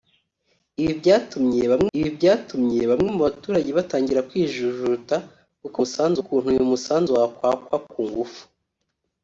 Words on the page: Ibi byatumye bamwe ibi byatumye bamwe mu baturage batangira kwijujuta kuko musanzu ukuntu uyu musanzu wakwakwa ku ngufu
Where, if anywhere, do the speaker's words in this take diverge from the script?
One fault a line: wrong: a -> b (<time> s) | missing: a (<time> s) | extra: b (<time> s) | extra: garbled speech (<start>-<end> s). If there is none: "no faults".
no faults